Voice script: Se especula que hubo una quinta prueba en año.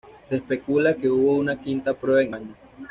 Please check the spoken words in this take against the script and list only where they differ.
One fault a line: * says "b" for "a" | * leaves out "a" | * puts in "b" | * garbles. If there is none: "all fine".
all fine